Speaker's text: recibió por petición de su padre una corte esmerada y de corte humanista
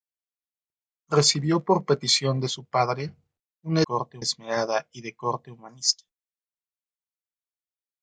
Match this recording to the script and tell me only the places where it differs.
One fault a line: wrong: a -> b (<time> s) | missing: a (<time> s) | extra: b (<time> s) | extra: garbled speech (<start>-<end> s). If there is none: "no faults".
no faults